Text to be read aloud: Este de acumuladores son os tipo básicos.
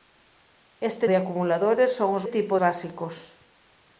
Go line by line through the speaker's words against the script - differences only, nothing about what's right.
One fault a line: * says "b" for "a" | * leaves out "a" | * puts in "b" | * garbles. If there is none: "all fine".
all fine